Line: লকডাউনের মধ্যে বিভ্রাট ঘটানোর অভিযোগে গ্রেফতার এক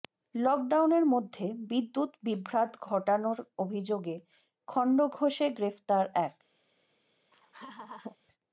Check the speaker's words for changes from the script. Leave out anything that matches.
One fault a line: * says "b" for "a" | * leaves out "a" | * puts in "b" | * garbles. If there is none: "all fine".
* puts in "বিদ্যুৎ"
* puts in "খণ্ডঘোষে"